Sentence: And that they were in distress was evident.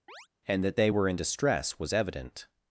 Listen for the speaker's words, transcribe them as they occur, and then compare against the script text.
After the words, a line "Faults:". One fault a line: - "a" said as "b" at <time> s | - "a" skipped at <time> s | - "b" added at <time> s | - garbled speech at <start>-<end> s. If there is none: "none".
And that they were in distress was evident.
Faults:
none